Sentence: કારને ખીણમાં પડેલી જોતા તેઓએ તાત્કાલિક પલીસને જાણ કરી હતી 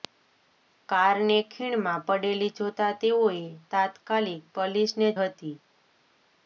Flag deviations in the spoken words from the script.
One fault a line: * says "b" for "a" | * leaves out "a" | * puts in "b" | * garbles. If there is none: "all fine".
* leaves out "જાણ કરી"